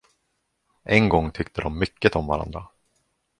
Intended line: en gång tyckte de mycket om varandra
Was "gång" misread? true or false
false